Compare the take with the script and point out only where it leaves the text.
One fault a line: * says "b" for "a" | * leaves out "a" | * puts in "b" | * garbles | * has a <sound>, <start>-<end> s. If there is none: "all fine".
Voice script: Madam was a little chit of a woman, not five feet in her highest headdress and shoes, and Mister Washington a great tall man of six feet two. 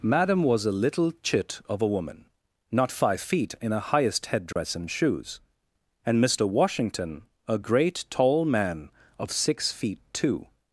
* has a dropout, 4.5-4.6 s